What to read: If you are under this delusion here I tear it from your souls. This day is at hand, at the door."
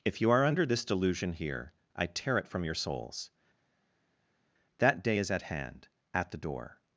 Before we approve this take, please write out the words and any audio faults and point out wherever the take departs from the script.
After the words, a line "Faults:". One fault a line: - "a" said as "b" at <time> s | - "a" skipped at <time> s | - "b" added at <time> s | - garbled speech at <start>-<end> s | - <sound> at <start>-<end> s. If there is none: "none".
If you are under this delusion here I tear it from your souls. That day is at hand, at the door."
Faults:
- "This" said as "That" at 4.8 s